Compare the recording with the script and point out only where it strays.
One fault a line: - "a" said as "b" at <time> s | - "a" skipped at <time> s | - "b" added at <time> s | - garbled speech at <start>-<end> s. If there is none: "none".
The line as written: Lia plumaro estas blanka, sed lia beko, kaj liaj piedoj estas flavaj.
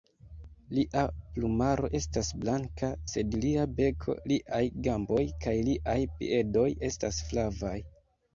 - "liaj gamboj" added at 4.3 s